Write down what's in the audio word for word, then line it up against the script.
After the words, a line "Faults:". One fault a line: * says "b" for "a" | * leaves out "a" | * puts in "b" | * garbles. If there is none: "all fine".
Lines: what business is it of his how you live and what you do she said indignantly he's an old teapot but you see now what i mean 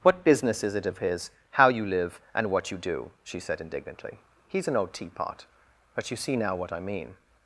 what business is it of his how you live and what you do she said indignantly he's an old teapot but you see now what i mean
Faults:
all fine